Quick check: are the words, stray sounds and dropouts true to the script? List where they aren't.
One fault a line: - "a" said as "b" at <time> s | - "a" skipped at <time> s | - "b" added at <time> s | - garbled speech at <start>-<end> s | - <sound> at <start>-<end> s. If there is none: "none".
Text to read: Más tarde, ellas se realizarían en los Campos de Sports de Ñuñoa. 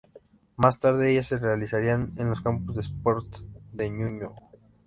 none